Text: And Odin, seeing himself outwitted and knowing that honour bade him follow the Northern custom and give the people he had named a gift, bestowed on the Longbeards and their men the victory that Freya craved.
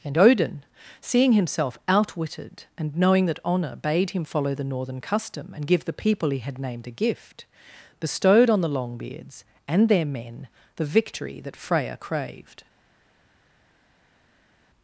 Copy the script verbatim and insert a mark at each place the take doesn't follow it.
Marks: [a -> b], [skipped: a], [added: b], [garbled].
And Odin, seeing himself outwitted and knowing that honour bade him follow the Northern custom and give the people he had named a gift, bestowed on the Longbeards and their men the victory that Freya craved.